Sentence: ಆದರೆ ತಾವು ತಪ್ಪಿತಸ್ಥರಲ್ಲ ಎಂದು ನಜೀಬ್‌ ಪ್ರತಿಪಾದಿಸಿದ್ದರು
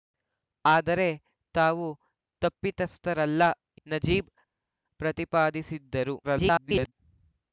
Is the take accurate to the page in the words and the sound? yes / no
no